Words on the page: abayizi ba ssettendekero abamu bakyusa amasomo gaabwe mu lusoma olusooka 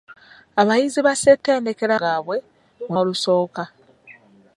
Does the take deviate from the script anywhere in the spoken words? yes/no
yes